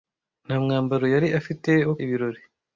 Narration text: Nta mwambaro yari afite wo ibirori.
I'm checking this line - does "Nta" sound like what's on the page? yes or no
yes